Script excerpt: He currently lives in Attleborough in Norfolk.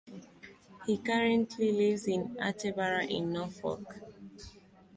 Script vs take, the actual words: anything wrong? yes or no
no